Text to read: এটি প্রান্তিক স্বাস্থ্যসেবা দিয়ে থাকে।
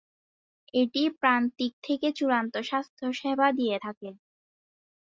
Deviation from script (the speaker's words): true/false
true